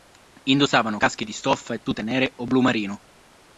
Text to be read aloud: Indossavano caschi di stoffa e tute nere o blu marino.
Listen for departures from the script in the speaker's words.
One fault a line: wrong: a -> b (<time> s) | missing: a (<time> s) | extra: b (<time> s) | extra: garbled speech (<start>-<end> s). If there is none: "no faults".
no faults